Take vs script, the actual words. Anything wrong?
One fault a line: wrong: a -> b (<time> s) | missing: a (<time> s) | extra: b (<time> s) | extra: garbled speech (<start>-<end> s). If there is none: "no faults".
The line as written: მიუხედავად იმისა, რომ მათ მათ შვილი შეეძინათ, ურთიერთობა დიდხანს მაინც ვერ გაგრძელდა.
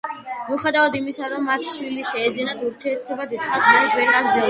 missing: მათ (1.7 s)